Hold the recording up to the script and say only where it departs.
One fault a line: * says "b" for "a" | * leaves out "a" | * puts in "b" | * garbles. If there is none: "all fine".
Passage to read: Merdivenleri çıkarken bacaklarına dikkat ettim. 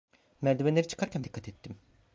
* leaves out "bacaklarına"